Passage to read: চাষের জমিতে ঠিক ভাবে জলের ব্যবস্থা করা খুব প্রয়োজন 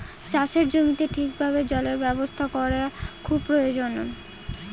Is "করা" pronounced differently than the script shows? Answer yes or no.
no